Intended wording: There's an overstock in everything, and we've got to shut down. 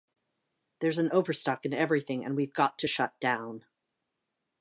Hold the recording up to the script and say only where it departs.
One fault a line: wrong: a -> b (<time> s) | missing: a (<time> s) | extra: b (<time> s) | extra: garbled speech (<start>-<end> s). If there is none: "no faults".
no faults